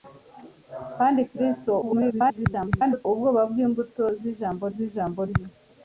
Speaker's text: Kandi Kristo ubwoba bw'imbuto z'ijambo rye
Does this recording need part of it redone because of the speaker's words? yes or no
yes